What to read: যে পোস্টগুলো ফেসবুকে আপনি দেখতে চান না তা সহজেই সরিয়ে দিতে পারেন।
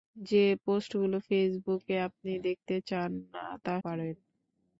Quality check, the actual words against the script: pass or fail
fail